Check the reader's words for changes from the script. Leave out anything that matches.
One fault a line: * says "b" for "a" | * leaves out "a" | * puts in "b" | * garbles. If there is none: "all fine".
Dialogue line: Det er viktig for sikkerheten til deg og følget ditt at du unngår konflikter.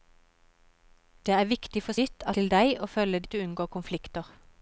* says "ditt" for "sikkerheten"
* leaves out "ditt"